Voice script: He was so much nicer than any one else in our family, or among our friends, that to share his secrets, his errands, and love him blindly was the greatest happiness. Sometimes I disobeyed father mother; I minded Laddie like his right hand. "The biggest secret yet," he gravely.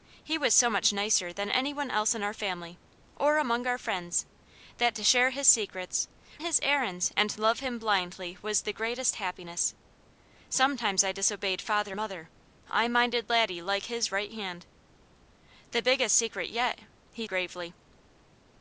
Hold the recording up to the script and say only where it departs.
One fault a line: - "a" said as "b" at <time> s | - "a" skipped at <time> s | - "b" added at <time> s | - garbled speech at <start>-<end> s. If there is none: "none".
none